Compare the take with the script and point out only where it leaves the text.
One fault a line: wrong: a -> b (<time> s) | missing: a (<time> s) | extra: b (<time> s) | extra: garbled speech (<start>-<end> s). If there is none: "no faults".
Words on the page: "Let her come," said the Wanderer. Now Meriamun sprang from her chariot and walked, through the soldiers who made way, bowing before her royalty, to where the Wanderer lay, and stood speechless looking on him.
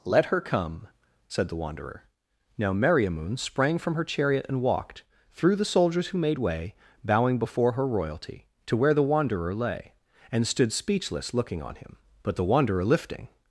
extra: But the Wanderer lifting (12.2 s)